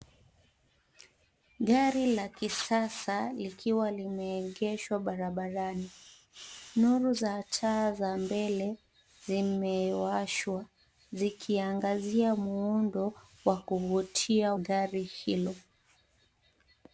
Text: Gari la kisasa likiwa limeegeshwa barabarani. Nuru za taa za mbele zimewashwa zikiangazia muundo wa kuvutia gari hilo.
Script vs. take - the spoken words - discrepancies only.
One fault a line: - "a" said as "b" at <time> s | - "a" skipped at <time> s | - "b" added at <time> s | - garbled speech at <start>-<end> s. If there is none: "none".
none